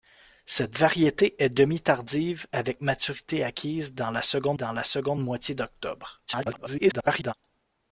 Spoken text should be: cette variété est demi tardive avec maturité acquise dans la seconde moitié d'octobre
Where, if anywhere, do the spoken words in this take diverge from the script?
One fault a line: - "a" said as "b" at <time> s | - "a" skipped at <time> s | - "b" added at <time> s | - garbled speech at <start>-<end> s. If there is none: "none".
- "dans la seconde" added at 4.5 s
- garbled speech at 6.3-7.3 s